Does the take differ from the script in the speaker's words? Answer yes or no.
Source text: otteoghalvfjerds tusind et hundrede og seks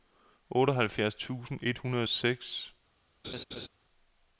no